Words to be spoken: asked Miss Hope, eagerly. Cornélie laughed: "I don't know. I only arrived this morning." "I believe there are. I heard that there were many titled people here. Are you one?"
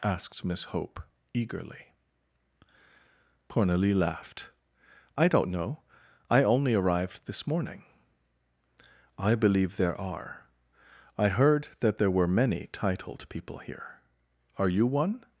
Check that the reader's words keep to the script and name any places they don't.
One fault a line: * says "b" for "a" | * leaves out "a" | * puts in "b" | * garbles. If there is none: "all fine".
all fine